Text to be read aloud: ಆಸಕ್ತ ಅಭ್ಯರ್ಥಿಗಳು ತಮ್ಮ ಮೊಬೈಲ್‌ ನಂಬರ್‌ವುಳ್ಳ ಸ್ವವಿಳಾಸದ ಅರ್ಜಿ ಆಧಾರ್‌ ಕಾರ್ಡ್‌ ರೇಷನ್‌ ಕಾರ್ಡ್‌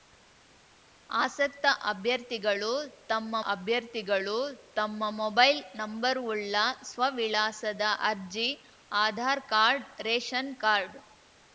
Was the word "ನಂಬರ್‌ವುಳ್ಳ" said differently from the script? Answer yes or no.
no